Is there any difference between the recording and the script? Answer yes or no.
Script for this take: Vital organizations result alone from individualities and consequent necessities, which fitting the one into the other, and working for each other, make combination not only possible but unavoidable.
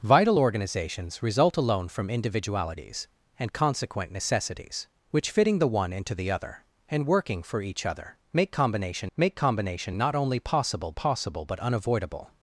yes